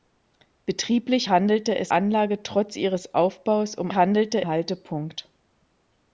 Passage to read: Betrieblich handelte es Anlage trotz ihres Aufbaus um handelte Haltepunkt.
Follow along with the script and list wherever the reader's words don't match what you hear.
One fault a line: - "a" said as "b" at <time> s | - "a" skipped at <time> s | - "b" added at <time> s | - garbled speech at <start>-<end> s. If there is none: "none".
none